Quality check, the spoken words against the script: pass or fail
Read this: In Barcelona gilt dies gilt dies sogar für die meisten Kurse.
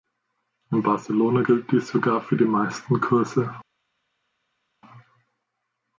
fail